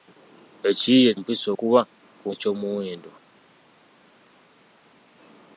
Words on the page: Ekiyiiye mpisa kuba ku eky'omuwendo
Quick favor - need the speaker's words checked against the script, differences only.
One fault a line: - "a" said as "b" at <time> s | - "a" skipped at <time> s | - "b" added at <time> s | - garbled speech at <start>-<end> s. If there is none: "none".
none